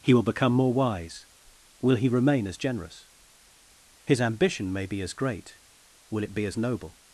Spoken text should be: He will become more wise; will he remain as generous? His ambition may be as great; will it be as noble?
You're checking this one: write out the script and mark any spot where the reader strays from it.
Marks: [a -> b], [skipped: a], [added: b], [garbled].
He will become more wise; will he remain as generous? His ambition may be as great; will it be as noble?